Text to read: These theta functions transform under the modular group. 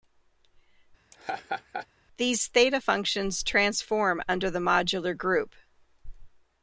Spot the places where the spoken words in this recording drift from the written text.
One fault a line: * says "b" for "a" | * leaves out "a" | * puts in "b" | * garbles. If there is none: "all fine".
all fine